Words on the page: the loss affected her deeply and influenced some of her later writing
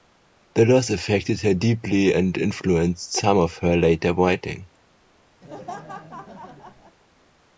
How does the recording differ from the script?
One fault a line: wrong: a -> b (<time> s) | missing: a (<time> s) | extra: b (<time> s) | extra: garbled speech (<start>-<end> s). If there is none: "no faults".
no faults